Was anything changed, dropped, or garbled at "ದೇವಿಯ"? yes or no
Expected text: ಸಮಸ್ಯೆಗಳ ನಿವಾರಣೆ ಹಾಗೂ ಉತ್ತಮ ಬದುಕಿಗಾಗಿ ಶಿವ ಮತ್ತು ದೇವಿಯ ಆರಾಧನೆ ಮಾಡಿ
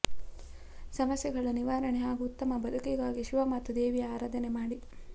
no